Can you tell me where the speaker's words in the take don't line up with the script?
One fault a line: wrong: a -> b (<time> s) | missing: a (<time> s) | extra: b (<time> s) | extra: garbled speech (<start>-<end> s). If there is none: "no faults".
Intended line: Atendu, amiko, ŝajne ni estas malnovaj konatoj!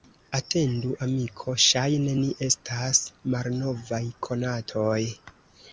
no faults